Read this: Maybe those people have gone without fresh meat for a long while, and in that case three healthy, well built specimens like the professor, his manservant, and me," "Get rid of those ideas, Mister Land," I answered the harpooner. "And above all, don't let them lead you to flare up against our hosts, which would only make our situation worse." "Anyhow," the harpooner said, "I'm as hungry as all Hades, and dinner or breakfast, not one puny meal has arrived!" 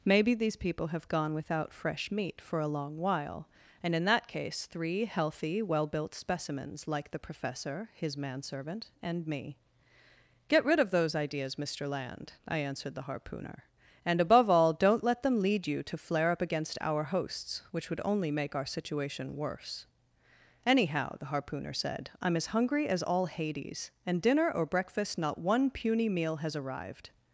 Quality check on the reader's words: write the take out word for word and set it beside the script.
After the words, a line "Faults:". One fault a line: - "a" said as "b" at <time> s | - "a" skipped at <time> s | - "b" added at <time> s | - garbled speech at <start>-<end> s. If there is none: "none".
Maybe these people have gone without fresh meat for a long while, and in that case three healthy, well built specimens like the professor, his manservant, and me," "Get rid of those ideas, Mister Land," I answered the harpooner. "And above all, don't let them lead you to flare up against our hosts, which would only make our situation worse." "Anyhow," the harpooner said, "I'm as hungry as all Hades, and dinner or breakfast, not one puny meal has arrived!"
Faults:
- "those" said as "these" at 0.3 s